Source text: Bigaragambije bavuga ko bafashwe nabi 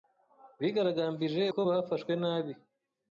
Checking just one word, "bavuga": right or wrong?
wrong